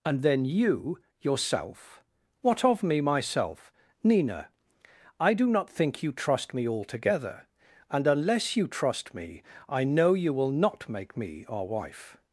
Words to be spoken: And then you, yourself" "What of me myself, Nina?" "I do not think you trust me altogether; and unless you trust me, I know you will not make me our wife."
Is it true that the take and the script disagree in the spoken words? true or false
false